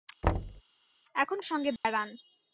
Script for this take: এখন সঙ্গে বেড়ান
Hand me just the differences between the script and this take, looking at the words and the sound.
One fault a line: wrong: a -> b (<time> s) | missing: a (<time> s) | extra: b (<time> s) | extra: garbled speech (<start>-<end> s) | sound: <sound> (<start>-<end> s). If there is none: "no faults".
sound: thud (0.2-0.6 s)
sound: dropout (1.8-1.8 s)